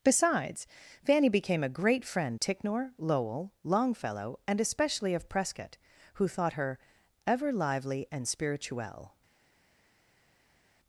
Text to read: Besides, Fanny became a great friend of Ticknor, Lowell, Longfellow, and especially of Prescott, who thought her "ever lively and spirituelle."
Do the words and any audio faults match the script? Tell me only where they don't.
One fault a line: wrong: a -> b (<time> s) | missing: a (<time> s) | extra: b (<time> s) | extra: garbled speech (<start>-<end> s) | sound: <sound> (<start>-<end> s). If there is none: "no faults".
missing: of (2.4 s)